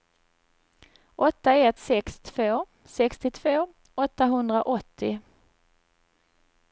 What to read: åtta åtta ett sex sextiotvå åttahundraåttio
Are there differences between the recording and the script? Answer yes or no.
yes